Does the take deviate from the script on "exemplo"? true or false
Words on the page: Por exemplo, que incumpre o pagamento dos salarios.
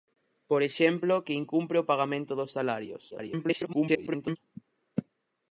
false